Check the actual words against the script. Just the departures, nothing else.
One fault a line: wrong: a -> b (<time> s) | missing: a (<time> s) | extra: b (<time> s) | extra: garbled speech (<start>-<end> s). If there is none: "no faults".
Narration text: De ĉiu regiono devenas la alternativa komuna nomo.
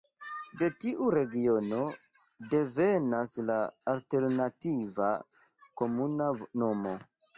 wrong: ĉiu -> tiu (0.8 s)